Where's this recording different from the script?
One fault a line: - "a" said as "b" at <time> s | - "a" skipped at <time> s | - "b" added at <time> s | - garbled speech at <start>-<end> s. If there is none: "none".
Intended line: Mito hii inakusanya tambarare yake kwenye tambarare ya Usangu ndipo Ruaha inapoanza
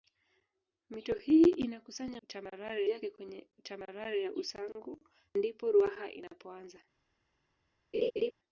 none